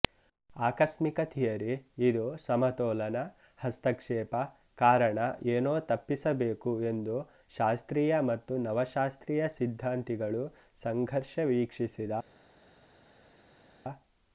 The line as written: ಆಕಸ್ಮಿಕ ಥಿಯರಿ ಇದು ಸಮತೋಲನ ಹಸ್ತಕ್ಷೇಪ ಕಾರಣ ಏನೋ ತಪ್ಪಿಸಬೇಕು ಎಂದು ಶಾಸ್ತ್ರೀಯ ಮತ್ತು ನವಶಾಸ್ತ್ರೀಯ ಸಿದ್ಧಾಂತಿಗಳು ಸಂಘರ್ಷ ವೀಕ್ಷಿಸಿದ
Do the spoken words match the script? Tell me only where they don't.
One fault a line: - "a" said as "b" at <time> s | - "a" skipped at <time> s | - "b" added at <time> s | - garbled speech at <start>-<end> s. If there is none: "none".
none